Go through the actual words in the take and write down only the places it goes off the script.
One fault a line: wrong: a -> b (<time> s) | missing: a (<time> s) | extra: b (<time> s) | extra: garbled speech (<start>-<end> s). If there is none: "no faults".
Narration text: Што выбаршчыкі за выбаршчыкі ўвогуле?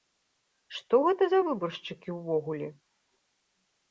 wrong: выбаршчыкі -> гэта (1.1 s)